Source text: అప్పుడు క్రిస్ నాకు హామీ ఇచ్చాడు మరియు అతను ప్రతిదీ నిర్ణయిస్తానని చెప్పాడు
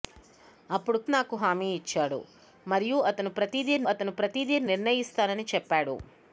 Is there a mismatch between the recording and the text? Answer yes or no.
yes